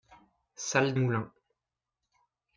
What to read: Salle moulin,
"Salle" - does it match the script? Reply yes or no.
yes